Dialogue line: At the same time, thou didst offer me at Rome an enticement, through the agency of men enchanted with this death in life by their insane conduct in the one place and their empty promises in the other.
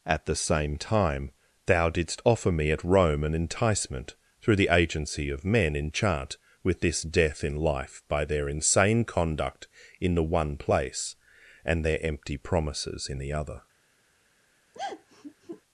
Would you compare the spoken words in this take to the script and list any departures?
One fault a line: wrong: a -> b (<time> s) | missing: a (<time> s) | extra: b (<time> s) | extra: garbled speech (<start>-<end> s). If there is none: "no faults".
wrong: enchanted -> enchant (5.8 s)